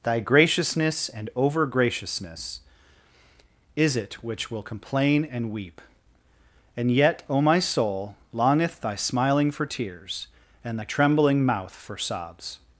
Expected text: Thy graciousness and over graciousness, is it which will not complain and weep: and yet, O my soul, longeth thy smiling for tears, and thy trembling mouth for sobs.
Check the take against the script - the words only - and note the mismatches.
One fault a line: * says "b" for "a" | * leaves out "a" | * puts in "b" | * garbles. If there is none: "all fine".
* leaves out "not"